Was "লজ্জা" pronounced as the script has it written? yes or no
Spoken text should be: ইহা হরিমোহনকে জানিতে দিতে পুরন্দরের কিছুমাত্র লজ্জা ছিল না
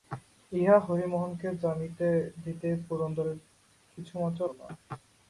no